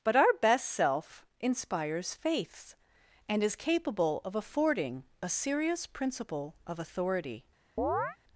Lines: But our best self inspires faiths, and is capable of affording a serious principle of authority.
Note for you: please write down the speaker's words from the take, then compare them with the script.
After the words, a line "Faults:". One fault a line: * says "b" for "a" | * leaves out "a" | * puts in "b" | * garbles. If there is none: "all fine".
But our best self inspires faiths, and is capable of affording a serious principle of authority.
Faults:
all fine